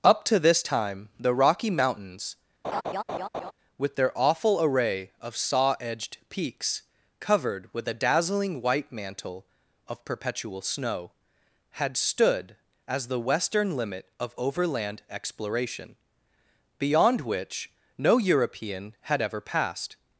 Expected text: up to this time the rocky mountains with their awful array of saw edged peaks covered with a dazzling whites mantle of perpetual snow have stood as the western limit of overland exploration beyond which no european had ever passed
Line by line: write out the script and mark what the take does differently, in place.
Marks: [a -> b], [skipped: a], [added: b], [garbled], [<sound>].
up to this time the rocky mountains [laugh] with their awful array of saw edged peaks covered with a dazzling [whites -> white] mantle of perpetual snow [have -> had] stood as the western limit of overland exploration beyond which no european had ever passed